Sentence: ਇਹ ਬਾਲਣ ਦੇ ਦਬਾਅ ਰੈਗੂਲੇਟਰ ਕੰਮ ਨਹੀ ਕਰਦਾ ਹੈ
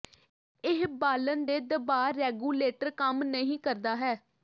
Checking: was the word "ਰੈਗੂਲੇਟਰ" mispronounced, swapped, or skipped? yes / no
no